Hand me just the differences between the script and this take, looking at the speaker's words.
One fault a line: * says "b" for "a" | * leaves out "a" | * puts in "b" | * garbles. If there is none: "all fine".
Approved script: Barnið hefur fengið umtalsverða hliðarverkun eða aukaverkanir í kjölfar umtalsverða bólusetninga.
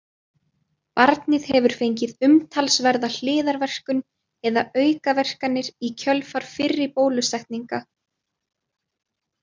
* says "fyrri" for "umtalsverða"